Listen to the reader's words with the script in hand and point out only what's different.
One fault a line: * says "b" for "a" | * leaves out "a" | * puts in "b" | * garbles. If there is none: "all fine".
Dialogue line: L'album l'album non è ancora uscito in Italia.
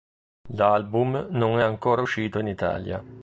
* leaves out "l'album"